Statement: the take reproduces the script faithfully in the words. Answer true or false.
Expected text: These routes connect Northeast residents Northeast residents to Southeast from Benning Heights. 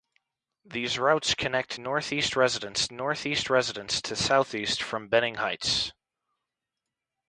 true